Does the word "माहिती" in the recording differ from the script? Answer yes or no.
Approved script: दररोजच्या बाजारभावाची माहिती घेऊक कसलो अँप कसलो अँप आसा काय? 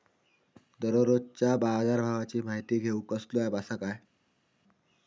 no